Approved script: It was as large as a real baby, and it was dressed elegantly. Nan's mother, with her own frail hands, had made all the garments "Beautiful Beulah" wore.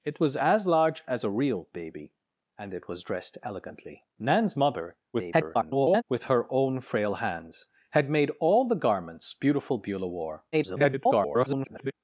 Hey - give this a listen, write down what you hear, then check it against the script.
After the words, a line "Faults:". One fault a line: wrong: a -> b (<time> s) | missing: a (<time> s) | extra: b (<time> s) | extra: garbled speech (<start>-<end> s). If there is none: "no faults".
It was as large as a real baby, and it was dressed elegantly. Nan's mother, [garbled] with her own frail hands, had made all the garments "Beautiful Beulah" wore. [garbled]
Faults:
extra: garbled speech (5.1-6.0 s)
extra: garbled speech (10.5-11.9 s)